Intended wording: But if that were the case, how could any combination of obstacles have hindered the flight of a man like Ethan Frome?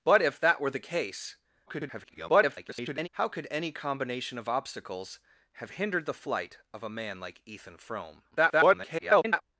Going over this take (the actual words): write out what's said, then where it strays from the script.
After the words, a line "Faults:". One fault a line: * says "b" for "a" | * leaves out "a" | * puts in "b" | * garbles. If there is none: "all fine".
But if that were the case, [garbled] how could any combination of obstacles have hindered the flight of a man like Ethan Frome? [garbled]
Faults:
* garbles
* garbles